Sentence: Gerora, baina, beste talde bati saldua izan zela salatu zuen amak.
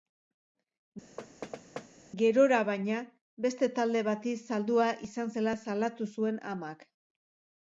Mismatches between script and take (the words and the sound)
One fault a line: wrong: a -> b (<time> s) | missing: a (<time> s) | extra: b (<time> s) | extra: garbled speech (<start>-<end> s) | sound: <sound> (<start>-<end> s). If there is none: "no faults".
sound: thud (1.2-1.9 s)